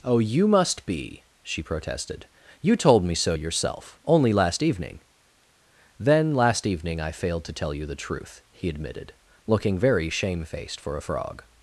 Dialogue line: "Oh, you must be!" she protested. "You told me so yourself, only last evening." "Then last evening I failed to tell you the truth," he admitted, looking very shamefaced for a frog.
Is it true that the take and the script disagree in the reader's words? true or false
false